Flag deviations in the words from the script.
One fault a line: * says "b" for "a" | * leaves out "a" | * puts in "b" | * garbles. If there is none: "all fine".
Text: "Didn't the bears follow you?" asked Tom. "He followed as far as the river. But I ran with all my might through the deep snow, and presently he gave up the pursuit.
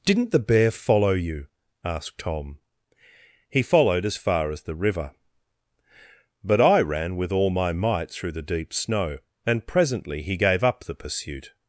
* says "bear" for "bears"